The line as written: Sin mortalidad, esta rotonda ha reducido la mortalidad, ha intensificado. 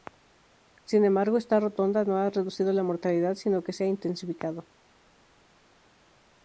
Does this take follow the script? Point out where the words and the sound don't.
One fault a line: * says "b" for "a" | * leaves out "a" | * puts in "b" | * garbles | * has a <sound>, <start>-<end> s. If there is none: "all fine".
* says "embargo" for "mortalidad"
* puts in "no"
* puts in "sino que se"